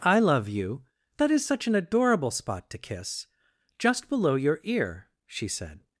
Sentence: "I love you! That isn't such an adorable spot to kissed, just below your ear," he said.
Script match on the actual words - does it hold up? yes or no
no